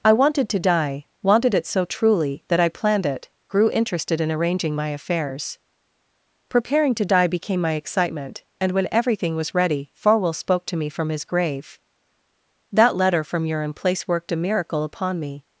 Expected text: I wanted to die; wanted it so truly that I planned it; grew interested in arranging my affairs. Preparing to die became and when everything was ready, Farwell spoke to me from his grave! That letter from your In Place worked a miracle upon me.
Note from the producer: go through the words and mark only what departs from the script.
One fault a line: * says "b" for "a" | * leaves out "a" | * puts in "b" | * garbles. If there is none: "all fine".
* puts in "my excitement"